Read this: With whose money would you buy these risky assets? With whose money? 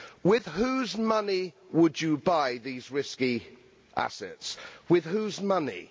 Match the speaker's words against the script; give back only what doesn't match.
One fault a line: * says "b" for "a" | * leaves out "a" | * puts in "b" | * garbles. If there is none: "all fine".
all fine